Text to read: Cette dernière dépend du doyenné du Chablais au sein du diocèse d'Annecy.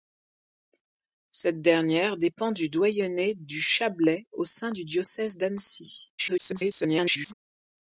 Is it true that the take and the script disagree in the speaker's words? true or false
true